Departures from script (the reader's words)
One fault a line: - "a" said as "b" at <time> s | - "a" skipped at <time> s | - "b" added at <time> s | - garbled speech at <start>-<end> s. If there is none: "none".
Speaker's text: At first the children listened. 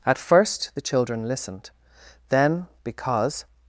- "Then because" added at 2.3 s